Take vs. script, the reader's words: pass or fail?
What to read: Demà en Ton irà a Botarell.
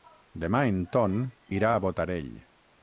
pass